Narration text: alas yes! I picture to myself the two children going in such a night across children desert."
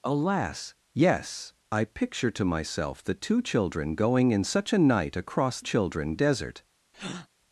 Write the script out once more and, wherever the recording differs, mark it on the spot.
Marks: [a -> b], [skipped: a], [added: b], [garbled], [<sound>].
alas yes! I picture to myself the two children going in such a night across children desert." [breath]